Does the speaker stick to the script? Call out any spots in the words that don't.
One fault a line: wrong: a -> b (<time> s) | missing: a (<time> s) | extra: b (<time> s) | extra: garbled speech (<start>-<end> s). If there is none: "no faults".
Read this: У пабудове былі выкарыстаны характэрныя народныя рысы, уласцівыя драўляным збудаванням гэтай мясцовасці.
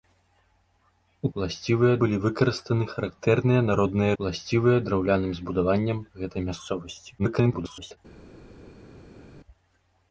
wrong: пабудове -> уласцівыя (1.4 s)
missing: рысы (4.1 s)
extra: garbled speech (7.2-8.0 s)